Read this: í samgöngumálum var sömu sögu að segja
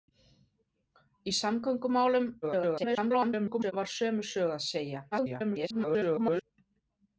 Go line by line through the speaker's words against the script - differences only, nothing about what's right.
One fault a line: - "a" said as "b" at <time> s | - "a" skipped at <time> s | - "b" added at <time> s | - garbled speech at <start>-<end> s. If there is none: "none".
- garbled speech at 2.4-3.7 s
- garbled speech at 5.1-6.4 s